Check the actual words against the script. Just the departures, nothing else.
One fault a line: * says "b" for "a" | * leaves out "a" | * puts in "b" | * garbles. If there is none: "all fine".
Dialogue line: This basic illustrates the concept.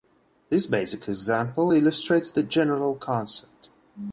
* puts in "example"
* puts in "general"